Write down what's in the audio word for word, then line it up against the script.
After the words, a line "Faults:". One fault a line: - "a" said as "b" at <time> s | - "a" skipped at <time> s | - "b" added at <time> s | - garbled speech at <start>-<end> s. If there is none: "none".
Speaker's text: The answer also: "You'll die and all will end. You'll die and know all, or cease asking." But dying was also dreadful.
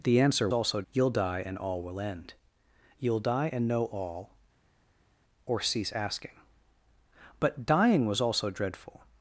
The answer also: "You'll die and all will end. You'll die and know all, or cease asking." But dying was also dreadful.
Faults:
none